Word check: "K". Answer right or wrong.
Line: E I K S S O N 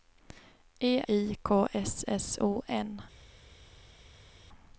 right